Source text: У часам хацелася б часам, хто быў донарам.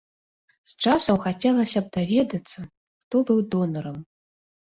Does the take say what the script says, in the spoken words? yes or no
no